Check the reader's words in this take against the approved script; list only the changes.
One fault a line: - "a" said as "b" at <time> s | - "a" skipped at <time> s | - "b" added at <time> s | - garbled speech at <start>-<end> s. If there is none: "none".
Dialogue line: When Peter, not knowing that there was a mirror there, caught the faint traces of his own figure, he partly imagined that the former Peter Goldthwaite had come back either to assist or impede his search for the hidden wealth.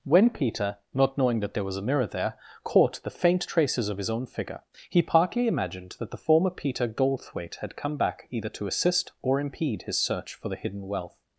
none